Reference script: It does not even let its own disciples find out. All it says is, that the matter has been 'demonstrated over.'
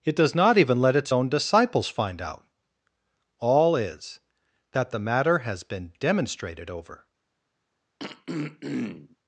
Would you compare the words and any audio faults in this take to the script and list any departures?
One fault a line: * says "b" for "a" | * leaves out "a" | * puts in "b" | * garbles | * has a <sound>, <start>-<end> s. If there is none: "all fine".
* leaves out "it says"
* has a throat clearing, 8.0-9.2 s